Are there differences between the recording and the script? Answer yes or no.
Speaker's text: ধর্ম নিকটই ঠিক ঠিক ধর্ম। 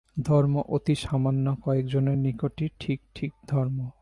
yes